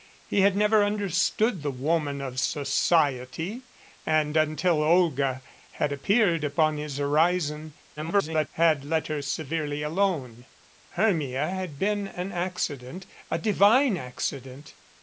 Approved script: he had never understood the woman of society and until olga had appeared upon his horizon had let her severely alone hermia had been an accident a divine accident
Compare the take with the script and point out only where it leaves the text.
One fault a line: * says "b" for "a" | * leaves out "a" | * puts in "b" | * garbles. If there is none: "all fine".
* garbles